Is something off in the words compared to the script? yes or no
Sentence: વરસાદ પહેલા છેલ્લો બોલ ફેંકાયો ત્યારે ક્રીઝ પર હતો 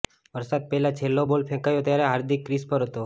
yes